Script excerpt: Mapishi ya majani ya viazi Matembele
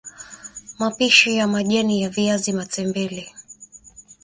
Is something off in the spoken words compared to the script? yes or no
no